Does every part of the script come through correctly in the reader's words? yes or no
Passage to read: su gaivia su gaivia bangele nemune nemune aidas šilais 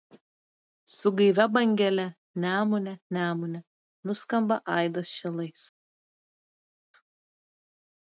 no